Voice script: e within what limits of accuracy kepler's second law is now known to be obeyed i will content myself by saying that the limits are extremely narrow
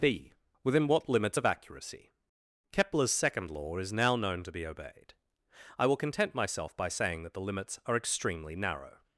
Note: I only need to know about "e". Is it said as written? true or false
false